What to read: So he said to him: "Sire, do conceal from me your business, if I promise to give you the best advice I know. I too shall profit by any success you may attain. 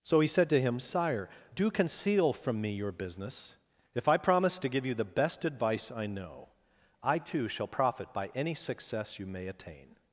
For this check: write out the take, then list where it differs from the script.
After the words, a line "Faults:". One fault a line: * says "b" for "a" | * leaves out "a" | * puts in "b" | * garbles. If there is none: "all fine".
So he said to him: "Sire, do conceal from me your business, if I promise to give you the best advice I know. I too shall profit by any success you may attain.
Faults:
all fine